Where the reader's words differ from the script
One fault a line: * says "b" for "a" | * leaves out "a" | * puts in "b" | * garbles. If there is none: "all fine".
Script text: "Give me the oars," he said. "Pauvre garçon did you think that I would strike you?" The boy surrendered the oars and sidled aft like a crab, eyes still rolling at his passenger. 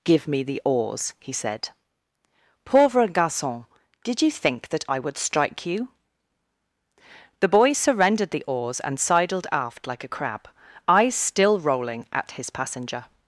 all fine